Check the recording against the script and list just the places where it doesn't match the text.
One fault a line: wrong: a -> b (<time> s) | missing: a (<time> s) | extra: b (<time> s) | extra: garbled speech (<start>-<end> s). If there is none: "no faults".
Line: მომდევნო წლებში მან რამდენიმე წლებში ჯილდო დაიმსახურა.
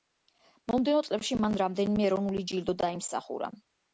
wrong: წლებში -> ეროვნული (2.1 s)